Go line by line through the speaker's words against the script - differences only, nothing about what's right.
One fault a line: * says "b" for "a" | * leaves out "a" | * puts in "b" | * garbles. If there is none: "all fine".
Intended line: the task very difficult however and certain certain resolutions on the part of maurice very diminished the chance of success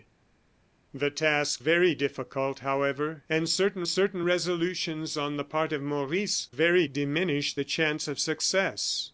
all fine